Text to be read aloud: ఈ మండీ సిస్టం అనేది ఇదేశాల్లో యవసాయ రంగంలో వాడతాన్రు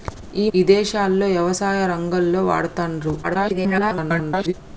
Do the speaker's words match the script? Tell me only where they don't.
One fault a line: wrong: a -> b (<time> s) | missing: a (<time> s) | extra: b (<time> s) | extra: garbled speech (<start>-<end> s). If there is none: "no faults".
missing: మండీ సిస్టం అనేది (0.5 s)
extra: garbled speech (3.2-4.5 s)